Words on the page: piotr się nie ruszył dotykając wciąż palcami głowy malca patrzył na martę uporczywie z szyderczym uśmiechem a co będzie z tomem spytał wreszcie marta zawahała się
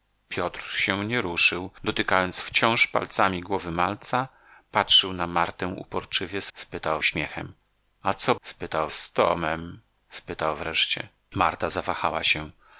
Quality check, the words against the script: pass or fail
fail